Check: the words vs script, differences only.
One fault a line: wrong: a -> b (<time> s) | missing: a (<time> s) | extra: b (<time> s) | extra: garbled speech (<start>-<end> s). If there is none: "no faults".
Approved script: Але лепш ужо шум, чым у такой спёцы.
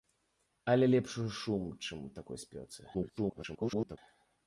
extra: garbled speech (2.9-4.0 s)